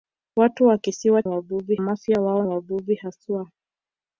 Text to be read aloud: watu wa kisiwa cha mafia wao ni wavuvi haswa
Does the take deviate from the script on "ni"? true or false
true